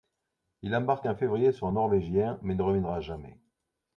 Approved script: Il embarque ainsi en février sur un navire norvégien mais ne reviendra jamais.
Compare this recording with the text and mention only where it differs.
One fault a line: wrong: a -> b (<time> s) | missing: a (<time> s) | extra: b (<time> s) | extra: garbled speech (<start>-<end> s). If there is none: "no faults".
missing: ainsi (1.1 s)
missing: navire (1.7 s)